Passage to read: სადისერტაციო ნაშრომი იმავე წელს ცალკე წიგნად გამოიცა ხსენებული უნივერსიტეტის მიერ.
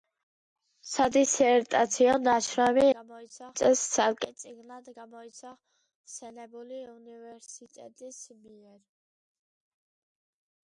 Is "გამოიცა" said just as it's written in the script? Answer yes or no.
yes